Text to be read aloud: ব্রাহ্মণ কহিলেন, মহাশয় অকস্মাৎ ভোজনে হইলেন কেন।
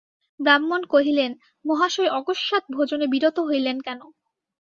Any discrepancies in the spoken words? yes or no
yes